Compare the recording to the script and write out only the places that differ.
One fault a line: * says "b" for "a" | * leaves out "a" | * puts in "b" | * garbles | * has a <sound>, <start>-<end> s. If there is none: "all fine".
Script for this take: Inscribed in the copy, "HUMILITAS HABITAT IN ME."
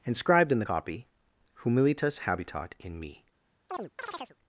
* has a chirp, 3.7-4.4 s